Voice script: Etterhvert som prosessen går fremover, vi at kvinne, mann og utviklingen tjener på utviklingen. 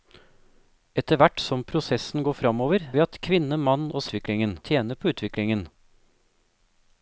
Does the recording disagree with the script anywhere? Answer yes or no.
no